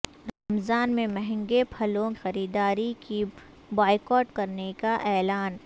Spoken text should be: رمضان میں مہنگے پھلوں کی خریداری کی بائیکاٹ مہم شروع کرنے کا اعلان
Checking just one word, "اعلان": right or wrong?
right